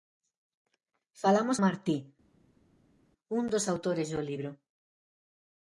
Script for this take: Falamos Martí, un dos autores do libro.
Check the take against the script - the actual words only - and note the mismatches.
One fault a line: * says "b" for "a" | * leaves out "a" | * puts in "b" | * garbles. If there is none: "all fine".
all fine